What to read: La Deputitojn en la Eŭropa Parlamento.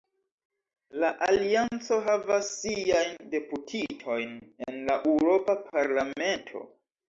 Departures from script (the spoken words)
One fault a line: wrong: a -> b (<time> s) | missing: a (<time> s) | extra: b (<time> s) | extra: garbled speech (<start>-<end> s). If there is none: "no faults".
extra: Alianco havas siajn (1.2 s)